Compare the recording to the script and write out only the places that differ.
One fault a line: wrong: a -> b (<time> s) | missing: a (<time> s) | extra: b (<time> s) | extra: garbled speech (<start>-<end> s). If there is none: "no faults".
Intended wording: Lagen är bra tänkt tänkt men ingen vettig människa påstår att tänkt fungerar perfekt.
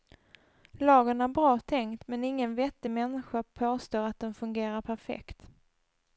missing: tänkt (2.1 s)
wrong: tänkt -> den (4.2 s)